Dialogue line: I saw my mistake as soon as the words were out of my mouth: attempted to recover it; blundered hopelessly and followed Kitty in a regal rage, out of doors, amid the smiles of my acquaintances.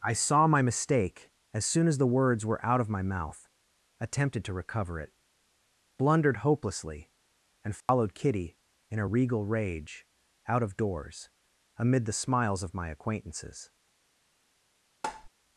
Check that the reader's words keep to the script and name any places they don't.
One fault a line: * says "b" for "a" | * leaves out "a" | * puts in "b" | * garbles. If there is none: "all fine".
all fine